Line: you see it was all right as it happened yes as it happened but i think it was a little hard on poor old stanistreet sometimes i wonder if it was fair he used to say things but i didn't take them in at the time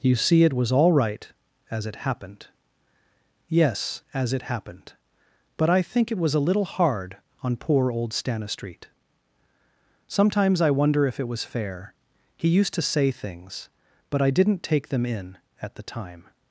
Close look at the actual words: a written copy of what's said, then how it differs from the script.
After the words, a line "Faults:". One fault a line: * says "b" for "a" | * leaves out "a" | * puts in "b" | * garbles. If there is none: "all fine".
you see it was all right as it happened yes as it happened but i think it was a little hard on poor old stanistreet sometimes i wonder if it was fair he used to say things but i didn't take them in at the time
Faults:
all fine